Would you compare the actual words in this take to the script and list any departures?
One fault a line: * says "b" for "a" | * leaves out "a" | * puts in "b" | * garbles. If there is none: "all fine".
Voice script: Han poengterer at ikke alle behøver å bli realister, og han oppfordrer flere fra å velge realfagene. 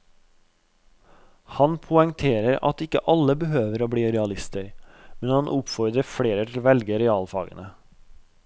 * says "men" for "og"
* says "til" for "fra"